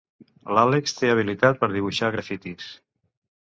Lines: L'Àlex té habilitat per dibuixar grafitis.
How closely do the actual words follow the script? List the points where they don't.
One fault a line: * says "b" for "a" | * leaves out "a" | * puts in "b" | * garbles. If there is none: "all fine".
all fine